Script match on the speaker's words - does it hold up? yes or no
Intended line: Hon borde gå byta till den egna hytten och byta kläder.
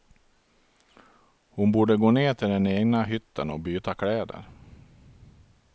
no